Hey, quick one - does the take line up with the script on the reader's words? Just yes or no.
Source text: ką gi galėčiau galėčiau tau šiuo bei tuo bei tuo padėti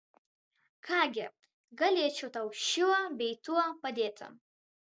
no